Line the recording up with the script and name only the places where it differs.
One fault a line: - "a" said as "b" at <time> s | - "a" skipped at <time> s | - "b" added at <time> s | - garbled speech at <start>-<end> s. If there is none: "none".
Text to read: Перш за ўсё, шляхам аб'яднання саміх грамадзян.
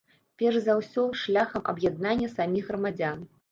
none